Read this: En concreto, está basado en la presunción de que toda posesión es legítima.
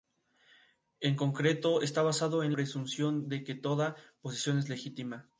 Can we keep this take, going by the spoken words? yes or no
no